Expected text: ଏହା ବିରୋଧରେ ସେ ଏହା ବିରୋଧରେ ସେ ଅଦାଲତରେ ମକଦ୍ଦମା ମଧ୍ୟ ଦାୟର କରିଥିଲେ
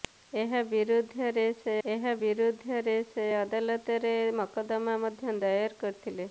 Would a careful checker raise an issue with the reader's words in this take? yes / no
no